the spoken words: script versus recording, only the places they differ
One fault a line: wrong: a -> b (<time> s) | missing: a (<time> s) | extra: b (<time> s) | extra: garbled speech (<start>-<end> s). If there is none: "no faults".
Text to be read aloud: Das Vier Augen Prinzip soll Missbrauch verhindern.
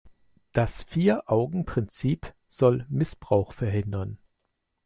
no faults